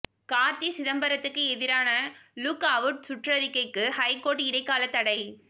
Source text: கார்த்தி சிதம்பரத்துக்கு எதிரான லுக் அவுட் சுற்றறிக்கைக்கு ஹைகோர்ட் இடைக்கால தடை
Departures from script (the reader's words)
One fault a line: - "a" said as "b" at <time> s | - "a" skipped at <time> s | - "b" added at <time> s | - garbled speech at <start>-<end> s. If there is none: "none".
none